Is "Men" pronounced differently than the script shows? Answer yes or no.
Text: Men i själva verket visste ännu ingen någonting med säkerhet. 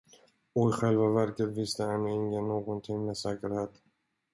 yes